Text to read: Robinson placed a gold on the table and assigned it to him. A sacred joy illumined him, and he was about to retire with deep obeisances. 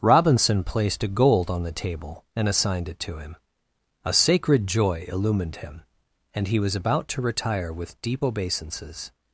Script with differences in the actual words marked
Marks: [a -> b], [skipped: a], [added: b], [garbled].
Robinson placed a gold on the table and assigned it to him. A sacred joy illumined him, and he was about to retire with deep obeisances.